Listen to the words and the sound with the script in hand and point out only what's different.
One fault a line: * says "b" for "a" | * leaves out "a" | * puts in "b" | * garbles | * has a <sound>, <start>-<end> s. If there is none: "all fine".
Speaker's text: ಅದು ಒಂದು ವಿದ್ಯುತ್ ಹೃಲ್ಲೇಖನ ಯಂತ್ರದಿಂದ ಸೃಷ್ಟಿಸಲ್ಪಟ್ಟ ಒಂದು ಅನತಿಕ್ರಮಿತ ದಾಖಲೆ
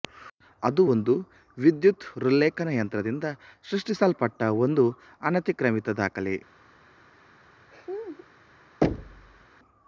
* has a laugh, 7.7-8.3 s
* has a thud, 8.8-9.5 s